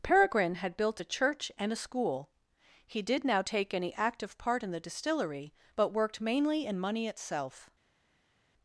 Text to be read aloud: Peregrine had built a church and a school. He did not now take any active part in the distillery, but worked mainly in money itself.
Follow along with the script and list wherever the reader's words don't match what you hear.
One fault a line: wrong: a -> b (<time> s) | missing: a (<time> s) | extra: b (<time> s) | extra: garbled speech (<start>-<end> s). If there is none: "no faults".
missing: not (3.2 s)